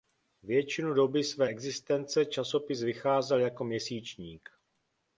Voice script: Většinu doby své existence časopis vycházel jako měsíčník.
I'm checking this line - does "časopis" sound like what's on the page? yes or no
yes